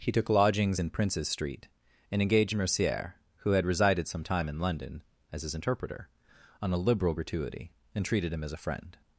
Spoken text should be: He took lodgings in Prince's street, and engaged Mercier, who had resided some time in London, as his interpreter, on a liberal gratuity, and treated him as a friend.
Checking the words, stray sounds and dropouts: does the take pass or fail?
pass